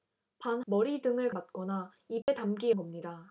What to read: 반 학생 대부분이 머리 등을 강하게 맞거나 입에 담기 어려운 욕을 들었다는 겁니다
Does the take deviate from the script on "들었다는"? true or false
true